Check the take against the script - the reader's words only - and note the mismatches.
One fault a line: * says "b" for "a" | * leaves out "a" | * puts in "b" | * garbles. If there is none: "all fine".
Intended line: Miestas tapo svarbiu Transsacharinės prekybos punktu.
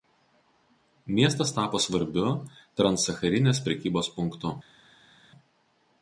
all fine